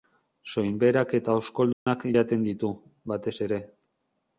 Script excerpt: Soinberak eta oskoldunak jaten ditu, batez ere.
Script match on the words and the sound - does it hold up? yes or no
no